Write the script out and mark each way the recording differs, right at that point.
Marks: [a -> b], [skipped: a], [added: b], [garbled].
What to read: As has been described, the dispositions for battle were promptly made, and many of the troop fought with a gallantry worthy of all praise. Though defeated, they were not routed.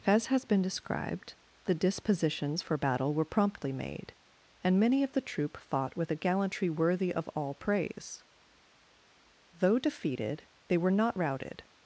As has been described, the dispositions for battle were promptly made, and many of the troop fought with a gallantry worthy of all praise. Though defeated, they were not routed.